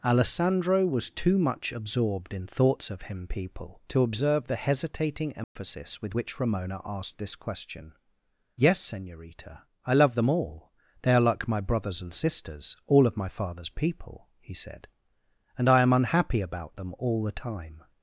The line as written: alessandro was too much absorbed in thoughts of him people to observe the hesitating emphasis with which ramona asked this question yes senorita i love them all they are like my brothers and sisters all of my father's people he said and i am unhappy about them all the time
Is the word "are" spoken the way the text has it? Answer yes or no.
yes